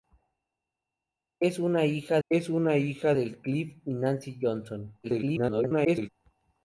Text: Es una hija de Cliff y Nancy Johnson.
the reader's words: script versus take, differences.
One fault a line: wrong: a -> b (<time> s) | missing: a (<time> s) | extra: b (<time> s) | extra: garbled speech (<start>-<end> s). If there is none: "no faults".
extra: es una hija (2.3 s)
extra: garbled speech (5.0-6.1 s)